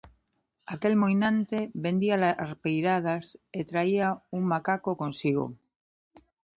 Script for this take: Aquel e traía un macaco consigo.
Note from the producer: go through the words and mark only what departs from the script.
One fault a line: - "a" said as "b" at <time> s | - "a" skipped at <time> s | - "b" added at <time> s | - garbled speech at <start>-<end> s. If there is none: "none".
- "moinante vendía larpeiradas" added at 1.0 s